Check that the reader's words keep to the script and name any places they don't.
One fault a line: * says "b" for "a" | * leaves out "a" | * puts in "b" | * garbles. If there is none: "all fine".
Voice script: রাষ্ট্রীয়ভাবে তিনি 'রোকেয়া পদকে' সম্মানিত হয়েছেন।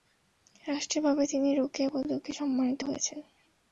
all fine